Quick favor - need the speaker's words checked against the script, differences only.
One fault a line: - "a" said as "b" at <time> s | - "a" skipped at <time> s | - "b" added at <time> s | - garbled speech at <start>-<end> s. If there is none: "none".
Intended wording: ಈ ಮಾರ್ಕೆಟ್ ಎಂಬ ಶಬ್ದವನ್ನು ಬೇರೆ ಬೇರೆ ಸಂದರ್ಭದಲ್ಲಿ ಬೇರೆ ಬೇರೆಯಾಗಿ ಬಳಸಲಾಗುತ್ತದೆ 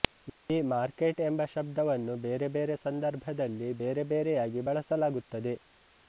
none